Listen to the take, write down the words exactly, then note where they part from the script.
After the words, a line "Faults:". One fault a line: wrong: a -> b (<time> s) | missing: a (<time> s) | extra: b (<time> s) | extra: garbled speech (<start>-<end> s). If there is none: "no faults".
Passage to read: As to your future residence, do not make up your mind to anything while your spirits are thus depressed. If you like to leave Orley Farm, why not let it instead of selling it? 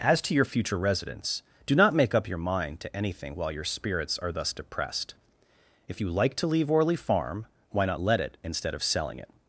As to your future residence, do not make up your mind to anything while your spirits are thus depressed. If you like to leave Orley Farm, why not let it instead of selling it?
Faults:
no faults